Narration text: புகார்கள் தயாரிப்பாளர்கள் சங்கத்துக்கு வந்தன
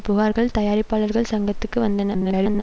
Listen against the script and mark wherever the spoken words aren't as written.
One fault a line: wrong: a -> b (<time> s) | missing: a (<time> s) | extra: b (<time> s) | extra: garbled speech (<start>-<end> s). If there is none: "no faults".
extra: garbled speech (2.1-2.6 s)